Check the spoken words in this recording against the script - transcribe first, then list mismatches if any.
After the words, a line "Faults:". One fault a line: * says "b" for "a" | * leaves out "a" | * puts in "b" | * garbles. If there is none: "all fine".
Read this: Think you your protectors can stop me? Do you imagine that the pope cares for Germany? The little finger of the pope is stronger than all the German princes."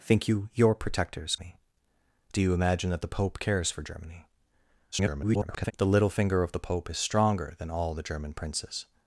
Think you your protectors me? Do you imagine that the pope cares for Germany? [garbled] The little finger of the pope is stronger than all the German princes."
Faults:
* leaves out "can stop"
* garbles